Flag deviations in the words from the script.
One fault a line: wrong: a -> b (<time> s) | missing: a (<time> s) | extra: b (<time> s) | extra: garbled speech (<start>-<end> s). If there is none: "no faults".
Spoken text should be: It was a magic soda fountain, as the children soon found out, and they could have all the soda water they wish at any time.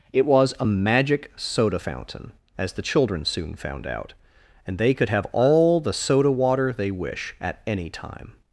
no faults